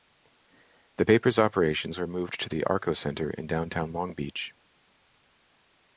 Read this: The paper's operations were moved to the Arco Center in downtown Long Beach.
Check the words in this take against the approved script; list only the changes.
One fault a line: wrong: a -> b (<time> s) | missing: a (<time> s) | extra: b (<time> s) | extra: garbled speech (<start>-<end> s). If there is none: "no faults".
no faults